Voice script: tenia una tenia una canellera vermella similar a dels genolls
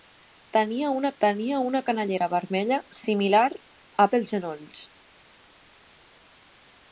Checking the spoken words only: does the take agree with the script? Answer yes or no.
yes